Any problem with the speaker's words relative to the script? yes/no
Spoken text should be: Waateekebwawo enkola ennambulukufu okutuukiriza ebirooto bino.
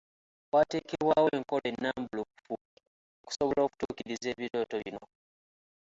yes